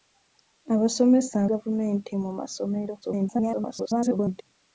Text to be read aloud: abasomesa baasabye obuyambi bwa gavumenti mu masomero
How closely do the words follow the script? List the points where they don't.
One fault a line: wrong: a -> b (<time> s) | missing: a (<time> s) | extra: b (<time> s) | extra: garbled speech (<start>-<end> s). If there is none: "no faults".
missing: baasabye obuyambi bwa (1.4 s)
extra: garbled speech (3.0-4.4 s)